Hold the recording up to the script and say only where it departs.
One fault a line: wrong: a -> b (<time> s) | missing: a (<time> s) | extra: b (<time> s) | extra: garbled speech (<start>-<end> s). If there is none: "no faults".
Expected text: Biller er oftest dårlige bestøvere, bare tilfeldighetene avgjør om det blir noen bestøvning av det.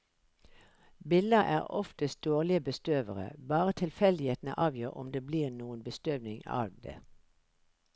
no faults